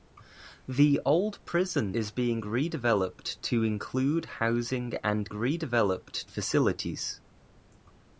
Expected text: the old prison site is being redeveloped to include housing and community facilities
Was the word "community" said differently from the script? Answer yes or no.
yes